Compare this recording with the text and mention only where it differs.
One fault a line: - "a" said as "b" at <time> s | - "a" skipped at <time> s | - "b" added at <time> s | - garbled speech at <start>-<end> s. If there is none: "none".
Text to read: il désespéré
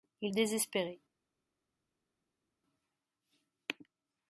none